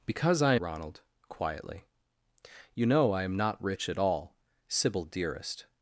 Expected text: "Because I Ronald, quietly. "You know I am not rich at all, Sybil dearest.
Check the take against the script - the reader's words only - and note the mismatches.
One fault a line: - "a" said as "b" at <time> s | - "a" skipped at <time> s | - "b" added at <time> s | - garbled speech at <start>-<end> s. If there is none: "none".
none